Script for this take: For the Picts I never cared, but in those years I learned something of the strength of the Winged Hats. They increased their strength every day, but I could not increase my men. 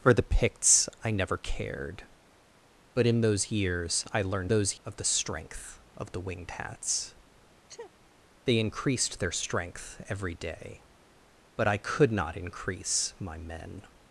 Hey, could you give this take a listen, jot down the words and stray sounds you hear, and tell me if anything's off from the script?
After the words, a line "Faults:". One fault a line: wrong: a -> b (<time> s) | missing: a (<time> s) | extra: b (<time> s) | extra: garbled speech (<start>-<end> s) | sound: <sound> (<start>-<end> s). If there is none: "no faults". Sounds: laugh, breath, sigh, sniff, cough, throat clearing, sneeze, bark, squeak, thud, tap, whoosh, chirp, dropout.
For the Picts I never cared, but in those years I learned those of the strength of the Winged Hats. They increased their strength every day, but I could not increase my men.
Faults:
wrong: something -> those (4.5 s)
sound: sneeze (7.7-7.9 s)